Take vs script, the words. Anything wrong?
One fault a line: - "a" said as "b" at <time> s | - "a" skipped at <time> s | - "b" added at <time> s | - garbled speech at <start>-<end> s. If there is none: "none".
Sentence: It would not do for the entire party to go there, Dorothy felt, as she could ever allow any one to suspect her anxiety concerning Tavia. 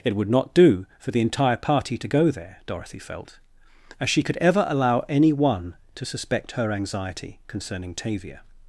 none